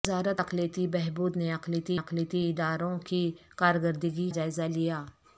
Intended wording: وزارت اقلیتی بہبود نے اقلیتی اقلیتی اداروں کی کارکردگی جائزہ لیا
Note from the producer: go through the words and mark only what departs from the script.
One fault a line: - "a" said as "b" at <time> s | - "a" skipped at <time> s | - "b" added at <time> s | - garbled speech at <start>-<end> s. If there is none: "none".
none